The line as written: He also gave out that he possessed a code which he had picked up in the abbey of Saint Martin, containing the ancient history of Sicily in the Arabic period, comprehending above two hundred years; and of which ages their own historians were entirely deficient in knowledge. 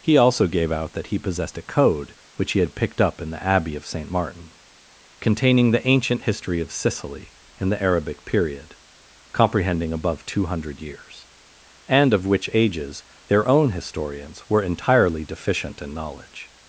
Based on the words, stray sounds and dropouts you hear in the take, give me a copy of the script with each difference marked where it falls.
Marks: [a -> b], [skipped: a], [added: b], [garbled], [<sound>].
He also gave out that he possessed a code which he had picked up in the abbey of Saint Martin, containing the ancient history of Sicily in the Arabic period, comprehending above two hundred years; and of which ages their own historians were entirely deficient in knowledge.